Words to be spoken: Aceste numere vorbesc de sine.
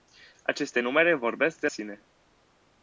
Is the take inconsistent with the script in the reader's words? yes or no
no